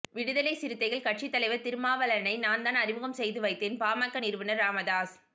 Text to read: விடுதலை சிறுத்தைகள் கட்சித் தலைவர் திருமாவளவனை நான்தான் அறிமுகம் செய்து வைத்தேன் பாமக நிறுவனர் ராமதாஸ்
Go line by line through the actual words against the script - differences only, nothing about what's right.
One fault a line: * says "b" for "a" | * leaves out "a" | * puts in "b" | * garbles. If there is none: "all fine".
all fine